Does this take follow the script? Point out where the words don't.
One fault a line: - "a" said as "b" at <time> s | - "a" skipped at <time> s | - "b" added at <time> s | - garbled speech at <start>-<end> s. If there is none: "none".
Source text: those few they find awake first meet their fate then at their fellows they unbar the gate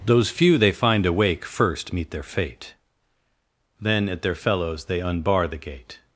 none